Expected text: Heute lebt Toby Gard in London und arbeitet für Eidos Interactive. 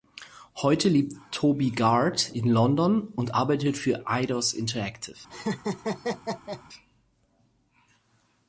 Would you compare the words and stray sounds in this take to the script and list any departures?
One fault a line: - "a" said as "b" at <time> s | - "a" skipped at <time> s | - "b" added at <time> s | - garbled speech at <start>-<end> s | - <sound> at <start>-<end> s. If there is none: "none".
- laugh at 5.3-6.6 s